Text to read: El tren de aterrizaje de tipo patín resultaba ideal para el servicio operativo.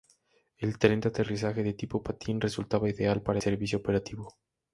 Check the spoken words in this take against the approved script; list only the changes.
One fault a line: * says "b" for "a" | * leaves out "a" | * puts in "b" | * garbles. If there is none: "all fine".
* leaves out "el"